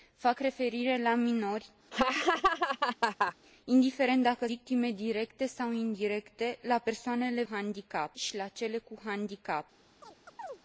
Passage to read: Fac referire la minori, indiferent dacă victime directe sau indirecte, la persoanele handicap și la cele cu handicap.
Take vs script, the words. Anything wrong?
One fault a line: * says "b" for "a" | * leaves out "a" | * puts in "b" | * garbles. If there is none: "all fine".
all fine